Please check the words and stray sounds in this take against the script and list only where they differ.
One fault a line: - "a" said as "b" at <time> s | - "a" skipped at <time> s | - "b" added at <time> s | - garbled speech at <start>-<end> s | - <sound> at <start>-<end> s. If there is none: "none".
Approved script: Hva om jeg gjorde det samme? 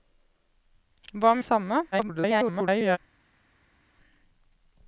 - "jeg gjorde" skipped at 1.4 s
- garbled speech at 1.9-3.0 s